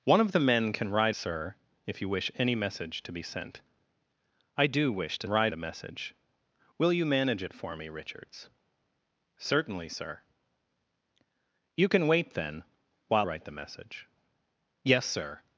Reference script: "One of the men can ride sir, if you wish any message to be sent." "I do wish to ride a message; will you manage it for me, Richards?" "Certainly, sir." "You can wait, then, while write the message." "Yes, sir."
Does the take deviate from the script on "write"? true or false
false